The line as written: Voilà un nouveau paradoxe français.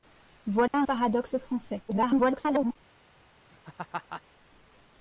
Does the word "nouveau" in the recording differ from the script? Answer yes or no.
yes